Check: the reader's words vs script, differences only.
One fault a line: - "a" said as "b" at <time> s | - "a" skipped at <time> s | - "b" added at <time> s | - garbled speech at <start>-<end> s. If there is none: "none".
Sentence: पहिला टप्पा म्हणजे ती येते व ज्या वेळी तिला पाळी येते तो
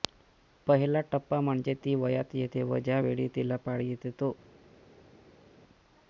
- "वयात" added at 1.9 s